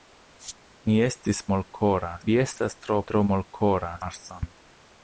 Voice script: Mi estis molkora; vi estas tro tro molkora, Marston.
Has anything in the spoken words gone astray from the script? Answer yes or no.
no